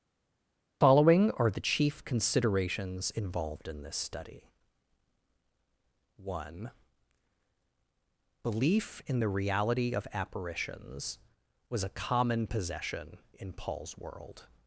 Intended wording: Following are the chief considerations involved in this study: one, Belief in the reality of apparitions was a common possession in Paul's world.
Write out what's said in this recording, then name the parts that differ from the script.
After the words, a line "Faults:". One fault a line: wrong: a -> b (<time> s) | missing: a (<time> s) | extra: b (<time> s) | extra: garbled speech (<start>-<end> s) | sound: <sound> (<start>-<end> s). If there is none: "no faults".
Following are the chief considerations involved in this study: one, Belief in the reality of apparitions was a common possession in Paul's world.
Faults:
no faults